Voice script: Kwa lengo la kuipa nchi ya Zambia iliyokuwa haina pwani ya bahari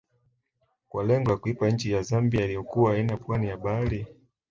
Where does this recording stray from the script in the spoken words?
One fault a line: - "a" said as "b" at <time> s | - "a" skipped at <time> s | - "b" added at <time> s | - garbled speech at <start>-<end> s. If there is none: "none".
none